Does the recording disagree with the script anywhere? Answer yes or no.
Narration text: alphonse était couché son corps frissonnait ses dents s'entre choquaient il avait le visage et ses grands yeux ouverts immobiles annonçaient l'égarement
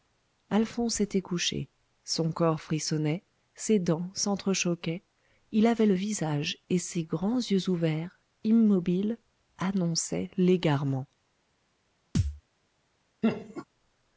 no